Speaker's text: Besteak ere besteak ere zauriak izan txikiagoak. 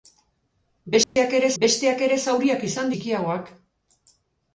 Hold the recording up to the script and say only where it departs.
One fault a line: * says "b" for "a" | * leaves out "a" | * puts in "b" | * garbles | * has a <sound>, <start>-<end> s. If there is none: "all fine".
* has a dropout, 1.0-1.2 s